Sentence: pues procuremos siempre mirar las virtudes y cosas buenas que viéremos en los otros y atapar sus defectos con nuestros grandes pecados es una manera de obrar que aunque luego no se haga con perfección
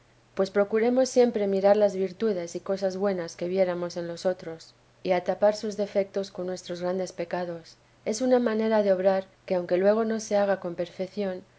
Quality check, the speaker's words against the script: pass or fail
pass